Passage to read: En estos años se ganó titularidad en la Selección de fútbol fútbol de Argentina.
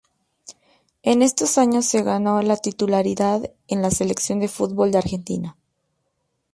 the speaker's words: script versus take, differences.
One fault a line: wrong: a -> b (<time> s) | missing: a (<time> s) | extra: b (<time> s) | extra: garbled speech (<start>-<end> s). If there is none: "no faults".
extra: la (2.4 s)
missing: fútbol (4.9 s)